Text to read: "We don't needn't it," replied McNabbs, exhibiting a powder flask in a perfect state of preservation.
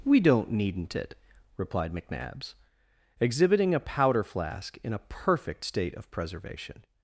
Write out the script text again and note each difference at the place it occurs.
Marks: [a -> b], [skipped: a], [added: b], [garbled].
"We don't needn't it," replied McNabbs, exhibiting a powder flask in a perfect state of preservation.